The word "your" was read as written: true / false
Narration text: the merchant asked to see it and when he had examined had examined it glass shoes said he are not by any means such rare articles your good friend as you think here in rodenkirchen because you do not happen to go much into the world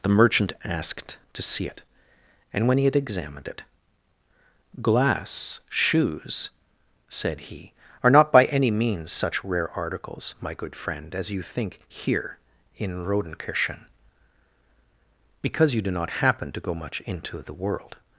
false